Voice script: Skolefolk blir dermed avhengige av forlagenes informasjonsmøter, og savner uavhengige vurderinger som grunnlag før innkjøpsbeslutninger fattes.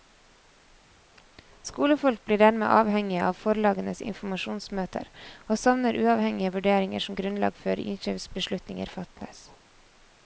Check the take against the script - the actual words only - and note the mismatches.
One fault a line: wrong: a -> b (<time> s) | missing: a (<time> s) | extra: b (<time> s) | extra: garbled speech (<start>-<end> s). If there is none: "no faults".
no faults